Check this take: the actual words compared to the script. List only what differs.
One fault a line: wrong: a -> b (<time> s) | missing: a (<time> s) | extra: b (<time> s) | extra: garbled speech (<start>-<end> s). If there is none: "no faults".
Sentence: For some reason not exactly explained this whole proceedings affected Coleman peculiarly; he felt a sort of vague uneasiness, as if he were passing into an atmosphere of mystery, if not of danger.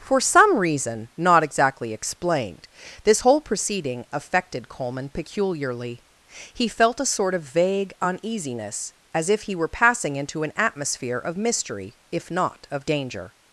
wrong: proceedings -> proceeding (3.4 s)